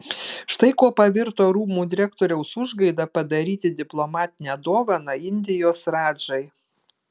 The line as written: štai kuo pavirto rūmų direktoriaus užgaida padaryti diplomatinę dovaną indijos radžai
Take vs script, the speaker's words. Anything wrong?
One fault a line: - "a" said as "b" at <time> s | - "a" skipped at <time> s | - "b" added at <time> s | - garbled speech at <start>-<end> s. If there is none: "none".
none